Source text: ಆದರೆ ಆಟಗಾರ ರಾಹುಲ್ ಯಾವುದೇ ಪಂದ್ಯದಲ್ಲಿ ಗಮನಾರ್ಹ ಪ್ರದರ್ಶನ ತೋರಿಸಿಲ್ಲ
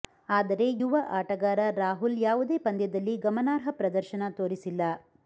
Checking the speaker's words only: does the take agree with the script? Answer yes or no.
no